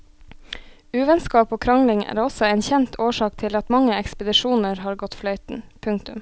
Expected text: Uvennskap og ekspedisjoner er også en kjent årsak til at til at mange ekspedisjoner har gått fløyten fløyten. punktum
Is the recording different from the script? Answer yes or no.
yes